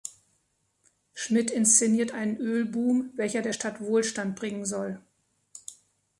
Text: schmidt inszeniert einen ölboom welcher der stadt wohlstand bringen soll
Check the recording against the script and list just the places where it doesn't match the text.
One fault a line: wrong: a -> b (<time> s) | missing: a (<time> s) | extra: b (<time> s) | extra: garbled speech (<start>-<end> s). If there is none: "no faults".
no faults